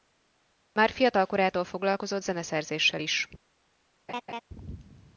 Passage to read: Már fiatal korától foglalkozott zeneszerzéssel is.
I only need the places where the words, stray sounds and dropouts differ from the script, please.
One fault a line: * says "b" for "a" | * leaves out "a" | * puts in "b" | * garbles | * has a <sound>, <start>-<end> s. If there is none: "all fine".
* has a laugh, 4.1-4.4 s